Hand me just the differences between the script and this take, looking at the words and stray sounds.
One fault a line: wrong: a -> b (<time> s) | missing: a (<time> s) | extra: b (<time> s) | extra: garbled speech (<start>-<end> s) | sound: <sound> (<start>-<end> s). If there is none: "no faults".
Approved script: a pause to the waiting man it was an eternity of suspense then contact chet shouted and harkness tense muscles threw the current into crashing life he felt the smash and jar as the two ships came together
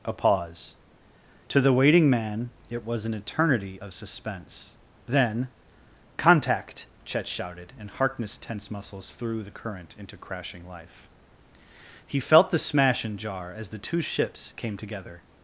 no faults